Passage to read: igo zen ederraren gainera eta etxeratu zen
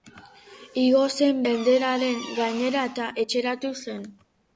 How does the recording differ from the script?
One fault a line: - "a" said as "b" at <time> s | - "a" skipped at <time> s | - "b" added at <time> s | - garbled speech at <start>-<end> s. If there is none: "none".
none